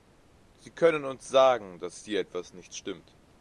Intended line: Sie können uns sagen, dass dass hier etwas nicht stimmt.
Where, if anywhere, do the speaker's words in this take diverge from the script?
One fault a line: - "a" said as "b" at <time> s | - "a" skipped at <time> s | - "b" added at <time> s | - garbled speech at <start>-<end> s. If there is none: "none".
- "dass" skipped at 2.0 s